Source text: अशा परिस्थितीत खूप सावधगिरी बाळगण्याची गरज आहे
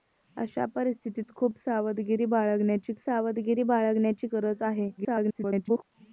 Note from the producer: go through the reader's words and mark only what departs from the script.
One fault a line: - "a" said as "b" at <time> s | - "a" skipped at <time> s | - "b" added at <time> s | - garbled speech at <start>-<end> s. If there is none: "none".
- "सावधगिरी बाळगण्याची" added at 3.0 s
- garbled speech at 5.0-5.8 s